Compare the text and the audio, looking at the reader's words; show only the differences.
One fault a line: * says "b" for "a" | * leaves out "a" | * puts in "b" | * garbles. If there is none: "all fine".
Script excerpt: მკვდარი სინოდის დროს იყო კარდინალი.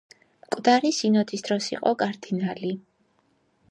all fine